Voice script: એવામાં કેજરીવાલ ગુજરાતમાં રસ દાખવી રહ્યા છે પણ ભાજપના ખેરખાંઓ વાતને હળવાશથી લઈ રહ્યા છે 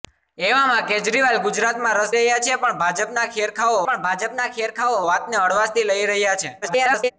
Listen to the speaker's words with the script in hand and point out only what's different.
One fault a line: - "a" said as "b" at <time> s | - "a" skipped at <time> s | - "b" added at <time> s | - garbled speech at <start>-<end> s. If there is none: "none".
- "દાખવી" skipped at 2.1 s
- "પણ ભાજપના ખેરખાંઓ" added at 3.8 s
- garbled speech at 6.6-7.1 s